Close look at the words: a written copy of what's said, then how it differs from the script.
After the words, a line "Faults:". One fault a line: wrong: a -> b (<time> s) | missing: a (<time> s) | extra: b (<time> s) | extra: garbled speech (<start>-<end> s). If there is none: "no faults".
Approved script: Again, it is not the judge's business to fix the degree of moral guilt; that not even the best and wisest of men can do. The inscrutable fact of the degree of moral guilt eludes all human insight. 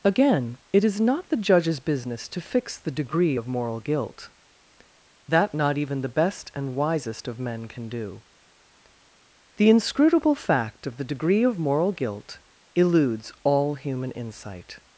Again, it is not the judge's business to fix the degree of moral guilt; that not even the best and wisest of men can do. The inscrutable fact of the degree of moral guilt eludes all human insight.
Faults:
no faults